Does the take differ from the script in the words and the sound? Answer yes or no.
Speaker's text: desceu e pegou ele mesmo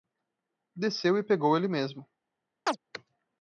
yes